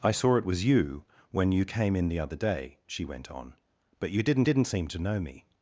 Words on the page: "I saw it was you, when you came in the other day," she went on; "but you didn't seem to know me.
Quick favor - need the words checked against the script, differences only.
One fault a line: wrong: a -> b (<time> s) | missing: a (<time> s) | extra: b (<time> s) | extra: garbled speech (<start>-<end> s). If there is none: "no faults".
extra: didn't (4.4 s)